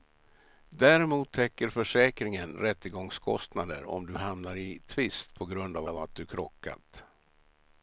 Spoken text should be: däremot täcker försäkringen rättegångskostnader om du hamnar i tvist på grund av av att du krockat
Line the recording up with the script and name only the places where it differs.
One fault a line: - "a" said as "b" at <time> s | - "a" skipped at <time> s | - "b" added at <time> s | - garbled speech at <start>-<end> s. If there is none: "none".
none